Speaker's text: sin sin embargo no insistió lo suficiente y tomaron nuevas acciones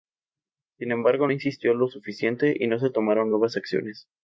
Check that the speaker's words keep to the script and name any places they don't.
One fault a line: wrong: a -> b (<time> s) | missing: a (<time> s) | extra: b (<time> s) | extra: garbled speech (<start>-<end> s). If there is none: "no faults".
missing: sin (0.9 s)
extra: no se (2.7 s)